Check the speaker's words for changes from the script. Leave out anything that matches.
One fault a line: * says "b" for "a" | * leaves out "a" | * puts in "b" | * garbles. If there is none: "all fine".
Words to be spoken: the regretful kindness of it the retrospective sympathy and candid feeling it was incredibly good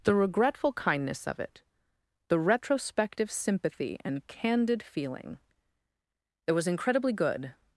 all fine